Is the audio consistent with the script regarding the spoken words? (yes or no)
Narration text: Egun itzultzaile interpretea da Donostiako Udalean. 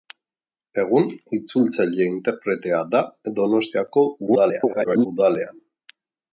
no